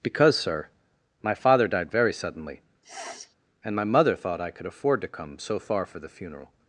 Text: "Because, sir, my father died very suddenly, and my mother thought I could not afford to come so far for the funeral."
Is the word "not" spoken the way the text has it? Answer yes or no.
no